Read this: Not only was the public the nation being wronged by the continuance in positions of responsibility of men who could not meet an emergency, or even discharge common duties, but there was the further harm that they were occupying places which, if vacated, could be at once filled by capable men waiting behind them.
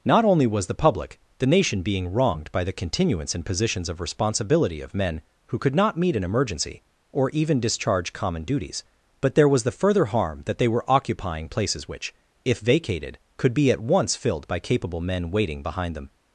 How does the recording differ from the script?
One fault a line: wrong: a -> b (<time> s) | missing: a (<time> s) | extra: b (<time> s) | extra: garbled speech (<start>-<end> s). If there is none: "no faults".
no faults